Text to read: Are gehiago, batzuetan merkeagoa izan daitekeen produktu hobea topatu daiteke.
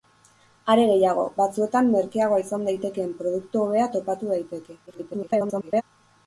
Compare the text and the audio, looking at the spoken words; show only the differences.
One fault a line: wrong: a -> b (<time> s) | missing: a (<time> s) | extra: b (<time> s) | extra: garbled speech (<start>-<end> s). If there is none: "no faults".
extra: garbled speech (4.9-5.8 s)